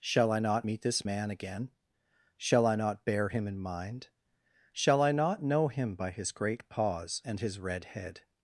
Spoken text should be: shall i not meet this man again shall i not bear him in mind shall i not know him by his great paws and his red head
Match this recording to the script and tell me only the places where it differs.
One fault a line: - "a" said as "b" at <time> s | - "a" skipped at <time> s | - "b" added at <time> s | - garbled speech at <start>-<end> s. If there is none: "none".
none